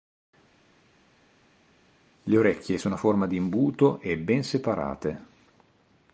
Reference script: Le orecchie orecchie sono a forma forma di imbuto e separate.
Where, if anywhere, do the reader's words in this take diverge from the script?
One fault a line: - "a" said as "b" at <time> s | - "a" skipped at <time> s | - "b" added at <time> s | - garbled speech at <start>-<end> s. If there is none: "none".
- "orecchie" skipped at 2.8 s
- "forma" skipped at 3.3 s
- "ben" added at 4.2 s